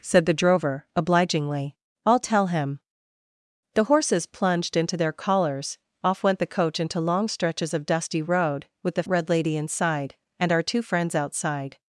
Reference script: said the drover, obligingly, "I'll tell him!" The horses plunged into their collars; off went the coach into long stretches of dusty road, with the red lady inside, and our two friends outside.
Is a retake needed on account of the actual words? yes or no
no